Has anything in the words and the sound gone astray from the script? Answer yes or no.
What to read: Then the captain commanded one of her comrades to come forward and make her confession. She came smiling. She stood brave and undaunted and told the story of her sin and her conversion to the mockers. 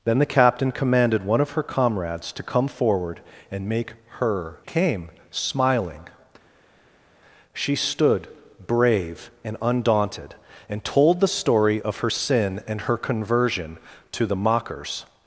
yes